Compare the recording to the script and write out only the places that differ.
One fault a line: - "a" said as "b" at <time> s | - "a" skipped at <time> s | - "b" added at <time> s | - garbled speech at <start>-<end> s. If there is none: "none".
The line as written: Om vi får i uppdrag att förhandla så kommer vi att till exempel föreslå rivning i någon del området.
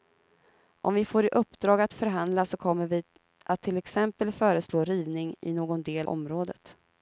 none